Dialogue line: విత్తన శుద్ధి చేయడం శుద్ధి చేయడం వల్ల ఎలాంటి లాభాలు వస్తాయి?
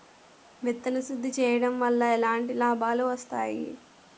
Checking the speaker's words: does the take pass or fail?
fail